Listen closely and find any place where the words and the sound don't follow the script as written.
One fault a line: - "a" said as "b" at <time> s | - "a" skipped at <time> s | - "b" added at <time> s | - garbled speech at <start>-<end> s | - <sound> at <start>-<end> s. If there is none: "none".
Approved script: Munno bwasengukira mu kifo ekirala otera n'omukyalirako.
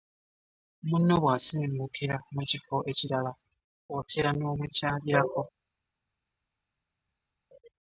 none